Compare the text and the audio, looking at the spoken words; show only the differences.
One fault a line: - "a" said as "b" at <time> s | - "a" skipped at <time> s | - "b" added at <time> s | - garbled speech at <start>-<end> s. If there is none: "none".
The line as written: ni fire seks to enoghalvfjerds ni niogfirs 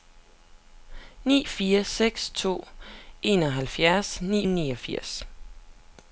none